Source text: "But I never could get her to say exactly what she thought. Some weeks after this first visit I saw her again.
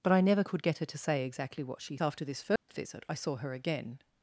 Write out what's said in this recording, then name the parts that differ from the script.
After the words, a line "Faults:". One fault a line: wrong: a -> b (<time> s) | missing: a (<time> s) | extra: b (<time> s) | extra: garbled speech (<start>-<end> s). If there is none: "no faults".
"But I never could get her to say exactly what she after this first visit I saw her again.
Faults:
missing: thought Some weeks (2.0 s)